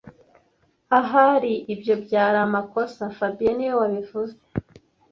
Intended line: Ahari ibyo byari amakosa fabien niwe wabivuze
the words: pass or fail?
pass